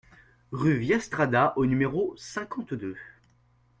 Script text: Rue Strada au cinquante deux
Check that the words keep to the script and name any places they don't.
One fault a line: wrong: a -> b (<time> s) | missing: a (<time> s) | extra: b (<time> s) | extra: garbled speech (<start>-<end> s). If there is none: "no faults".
extra: Via (0.8 s)
extra: numéro (1.7 s)